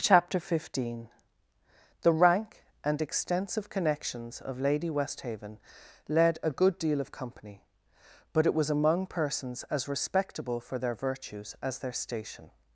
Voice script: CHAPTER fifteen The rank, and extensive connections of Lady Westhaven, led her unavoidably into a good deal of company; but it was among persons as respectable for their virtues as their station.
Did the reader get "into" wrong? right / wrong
wrong